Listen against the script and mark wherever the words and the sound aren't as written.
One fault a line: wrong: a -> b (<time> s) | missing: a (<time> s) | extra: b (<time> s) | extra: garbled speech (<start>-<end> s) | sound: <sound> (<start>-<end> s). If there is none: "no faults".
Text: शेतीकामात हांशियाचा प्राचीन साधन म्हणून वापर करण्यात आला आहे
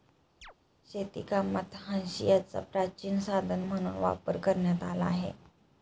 sound: chirp (0.4-0.5 s)